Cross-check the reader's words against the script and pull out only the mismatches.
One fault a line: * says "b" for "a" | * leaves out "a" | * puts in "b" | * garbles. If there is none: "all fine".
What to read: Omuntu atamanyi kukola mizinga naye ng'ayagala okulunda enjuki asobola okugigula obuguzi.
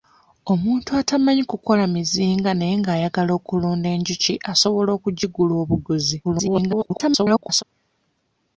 * garbles